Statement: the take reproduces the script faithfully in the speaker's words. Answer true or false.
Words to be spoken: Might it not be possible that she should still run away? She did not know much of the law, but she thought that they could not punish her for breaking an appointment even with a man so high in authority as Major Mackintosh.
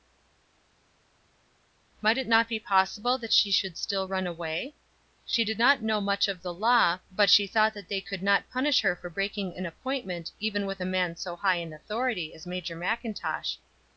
true